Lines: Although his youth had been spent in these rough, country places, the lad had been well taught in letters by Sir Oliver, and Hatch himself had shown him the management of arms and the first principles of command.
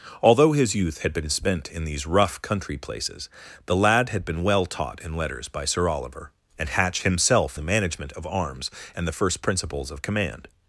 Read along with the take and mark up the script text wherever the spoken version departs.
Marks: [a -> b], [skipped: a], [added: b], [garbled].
Although his youth had been spent in these rough, country places, the lad had been well taught in letters by Sir Oliver, and Hatch himself [skipped: had shown him] the management of arms and the first principles of command.